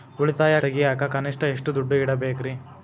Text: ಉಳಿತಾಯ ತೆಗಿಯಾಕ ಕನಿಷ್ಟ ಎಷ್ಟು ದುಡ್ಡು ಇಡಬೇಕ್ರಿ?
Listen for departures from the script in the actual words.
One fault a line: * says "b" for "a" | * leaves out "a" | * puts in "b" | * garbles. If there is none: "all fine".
all fine